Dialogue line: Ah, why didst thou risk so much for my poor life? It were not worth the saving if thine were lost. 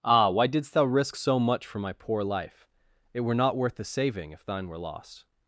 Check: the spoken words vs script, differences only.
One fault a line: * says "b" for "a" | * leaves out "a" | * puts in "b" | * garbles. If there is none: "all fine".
all fine